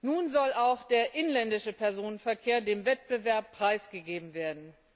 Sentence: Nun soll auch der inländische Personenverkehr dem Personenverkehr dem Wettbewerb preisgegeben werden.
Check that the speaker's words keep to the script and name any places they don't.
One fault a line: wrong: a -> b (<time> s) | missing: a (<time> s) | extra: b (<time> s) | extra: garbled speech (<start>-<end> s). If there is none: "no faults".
missing: Personenverkehr dem (2.9 s)